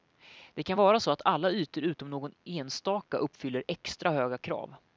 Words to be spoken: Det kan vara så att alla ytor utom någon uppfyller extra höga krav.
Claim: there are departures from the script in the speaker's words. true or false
true